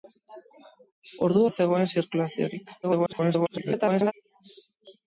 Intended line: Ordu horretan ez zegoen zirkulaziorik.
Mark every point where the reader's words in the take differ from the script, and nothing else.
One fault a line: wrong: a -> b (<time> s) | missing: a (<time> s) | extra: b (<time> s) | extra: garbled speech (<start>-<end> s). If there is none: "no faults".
missing: horretan (1.4 s)
extra: garbled speech (2.8-4.1 s)